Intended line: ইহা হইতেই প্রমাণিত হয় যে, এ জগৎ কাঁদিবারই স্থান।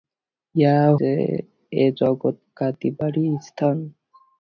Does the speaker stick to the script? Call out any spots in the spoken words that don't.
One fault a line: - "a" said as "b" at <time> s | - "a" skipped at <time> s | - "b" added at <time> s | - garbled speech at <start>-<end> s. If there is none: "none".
- "হইতেই প্রমাণিত হয়" skipped at 0.8 s